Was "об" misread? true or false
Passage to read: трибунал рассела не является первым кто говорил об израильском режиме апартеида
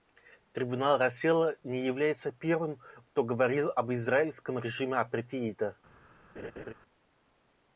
false